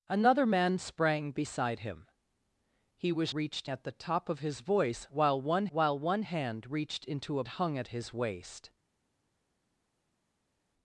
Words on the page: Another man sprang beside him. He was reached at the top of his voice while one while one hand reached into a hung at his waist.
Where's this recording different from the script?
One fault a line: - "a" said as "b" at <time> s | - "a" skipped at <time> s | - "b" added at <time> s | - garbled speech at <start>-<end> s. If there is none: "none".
none